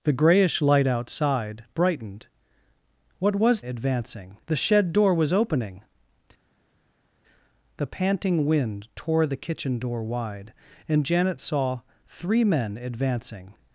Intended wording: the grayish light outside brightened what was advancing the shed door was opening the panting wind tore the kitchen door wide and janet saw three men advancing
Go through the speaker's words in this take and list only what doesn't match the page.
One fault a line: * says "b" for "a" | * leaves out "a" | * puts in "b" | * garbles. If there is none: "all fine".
all fine